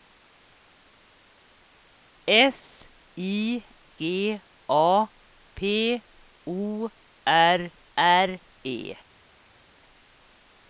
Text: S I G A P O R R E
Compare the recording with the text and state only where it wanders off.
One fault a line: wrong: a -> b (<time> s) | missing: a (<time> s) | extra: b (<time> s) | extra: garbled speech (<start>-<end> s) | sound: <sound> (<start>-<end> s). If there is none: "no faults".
no faults